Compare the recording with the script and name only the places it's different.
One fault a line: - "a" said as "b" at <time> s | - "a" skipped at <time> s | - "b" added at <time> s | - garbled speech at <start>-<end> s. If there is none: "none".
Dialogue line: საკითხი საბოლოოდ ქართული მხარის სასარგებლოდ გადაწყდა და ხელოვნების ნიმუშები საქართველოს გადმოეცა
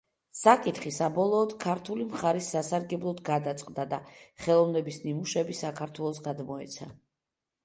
none